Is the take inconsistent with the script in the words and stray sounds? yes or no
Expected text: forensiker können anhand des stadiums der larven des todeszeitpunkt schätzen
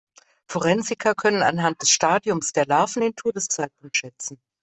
yes